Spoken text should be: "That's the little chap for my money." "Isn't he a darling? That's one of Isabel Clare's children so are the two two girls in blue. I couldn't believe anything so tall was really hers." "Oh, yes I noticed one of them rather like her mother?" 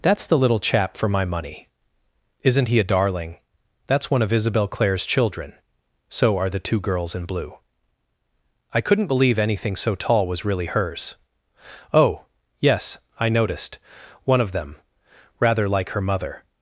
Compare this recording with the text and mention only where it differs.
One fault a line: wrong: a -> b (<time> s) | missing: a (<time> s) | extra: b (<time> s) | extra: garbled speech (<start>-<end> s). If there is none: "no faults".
missing: two (6.8 s)